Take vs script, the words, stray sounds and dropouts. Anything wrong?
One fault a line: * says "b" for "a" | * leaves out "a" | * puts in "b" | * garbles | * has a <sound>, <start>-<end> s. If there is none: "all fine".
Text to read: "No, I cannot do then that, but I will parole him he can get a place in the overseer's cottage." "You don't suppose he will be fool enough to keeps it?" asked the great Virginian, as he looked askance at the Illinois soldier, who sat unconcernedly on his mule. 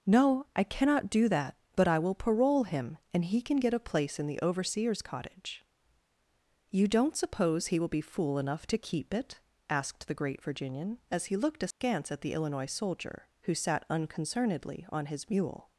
* leaves out "then"
* puts in "and"
* says "keep" for "keeps"
* has a dropout, 11.7-11.8 s